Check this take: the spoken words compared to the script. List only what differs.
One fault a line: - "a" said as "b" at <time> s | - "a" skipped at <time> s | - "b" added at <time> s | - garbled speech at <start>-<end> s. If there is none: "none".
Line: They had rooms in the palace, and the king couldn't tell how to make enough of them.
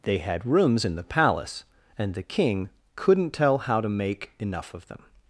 none